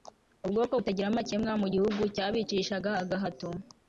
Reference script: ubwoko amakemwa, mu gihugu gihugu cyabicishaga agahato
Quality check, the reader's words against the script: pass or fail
fail